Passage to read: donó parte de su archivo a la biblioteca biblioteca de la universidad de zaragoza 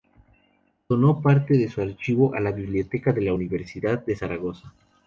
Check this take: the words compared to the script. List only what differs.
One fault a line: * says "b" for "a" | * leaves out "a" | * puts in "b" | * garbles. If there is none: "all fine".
* leaves out "biblioteca"